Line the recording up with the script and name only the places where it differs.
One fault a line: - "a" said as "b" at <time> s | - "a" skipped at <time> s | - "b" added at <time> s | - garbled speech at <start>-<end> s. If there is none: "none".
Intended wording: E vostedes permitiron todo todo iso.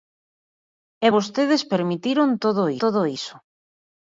none